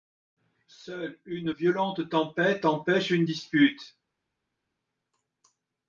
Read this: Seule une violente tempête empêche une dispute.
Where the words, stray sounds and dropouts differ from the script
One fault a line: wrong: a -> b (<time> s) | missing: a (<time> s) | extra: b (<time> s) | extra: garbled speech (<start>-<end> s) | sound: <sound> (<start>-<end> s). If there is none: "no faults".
no faults